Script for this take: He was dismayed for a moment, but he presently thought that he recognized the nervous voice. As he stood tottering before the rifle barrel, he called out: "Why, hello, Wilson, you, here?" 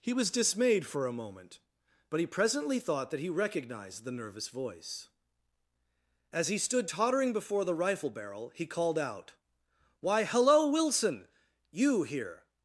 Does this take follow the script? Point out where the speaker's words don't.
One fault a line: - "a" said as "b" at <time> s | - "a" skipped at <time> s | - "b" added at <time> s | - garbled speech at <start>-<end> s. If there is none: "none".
none